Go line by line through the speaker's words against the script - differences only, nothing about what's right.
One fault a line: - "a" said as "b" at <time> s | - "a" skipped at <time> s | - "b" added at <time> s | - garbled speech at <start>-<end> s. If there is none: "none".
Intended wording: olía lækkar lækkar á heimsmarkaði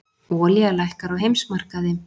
- "lækkar" skipped at 1.1 s